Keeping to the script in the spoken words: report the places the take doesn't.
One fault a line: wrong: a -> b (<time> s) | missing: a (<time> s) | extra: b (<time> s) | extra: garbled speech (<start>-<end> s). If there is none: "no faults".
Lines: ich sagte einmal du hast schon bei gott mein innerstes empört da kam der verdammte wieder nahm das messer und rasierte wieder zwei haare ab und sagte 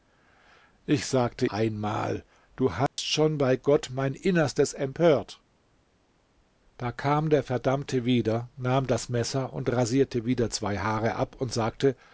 no faults